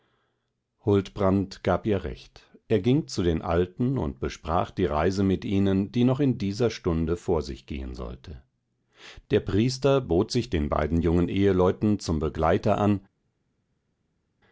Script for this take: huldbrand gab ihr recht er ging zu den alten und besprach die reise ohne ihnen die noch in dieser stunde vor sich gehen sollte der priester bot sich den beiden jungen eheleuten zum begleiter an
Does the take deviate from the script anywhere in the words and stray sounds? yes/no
yes